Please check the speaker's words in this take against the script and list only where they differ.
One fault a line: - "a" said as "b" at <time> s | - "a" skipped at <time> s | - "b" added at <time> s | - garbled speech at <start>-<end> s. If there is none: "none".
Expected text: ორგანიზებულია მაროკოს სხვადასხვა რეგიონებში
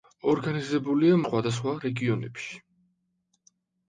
- "მაროკოს" skipped at 1.2 s